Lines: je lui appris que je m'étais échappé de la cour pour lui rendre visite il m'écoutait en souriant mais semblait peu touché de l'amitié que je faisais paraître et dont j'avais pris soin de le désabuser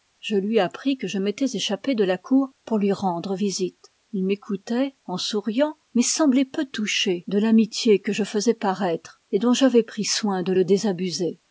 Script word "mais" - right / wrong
right